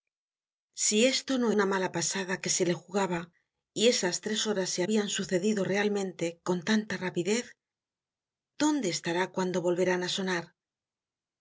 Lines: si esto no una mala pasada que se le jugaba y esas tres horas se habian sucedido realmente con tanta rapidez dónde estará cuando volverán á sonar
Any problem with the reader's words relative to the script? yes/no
no